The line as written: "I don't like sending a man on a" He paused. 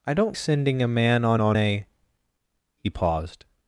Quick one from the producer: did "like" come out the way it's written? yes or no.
no